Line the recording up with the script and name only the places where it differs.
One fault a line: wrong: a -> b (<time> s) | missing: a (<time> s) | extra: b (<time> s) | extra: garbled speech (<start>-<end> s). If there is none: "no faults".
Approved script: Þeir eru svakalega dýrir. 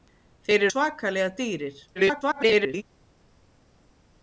missing: eru (0.7 s)
extra: garbled speech (2.0-2.8 s)